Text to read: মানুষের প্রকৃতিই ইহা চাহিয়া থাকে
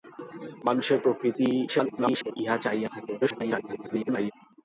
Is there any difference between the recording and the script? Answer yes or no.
yes